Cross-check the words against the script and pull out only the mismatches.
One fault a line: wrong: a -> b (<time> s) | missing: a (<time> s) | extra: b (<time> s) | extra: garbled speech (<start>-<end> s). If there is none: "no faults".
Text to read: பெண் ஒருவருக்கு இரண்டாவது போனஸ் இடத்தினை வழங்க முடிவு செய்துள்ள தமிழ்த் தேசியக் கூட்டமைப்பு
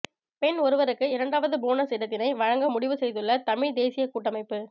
no faults